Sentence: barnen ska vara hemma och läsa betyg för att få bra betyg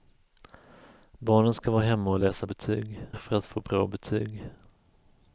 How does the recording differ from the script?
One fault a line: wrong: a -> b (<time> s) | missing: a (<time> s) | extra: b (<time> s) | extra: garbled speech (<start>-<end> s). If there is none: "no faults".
no faults